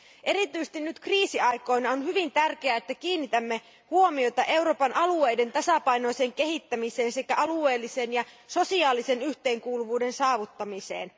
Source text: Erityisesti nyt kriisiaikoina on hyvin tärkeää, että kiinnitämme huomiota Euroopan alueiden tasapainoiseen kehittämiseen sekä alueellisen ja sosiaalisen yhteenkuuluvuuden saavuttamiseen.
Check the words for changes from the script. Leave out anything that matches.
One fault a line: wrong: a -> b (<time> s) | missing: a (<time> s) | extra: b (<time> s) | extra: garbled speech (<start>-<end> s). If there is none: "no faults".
no faults